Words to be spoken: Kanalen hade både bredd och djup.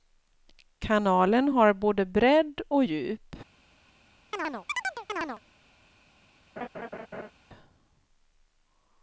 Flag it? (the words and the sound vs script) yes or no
yes